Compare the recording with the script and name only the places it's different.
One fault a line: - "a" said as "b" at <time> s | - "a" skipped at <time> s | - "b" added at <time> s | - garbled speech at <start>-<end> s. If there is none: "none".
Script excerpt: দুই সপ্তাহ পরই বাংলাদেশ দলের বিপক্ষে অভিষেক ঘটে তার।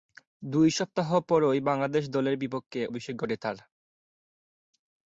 none